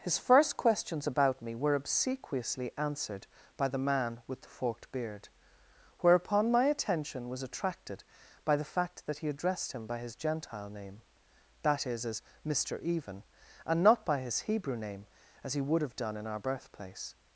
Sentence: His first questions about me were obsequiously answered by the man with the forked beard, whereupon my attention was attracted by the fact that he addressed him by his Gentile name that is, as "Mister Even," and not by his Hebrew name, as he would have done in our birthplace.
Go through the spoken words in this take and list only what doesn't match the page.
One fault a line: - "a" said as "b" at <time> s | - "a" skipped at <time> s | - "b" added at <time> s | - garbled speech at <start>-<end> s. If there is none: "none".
none